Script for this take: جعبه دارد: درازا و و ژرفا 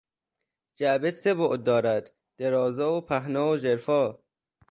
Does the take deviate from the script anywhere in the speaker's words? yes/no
yes